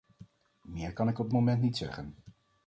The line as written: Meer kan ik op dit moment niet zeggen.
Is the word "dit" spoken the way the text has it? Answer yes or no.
no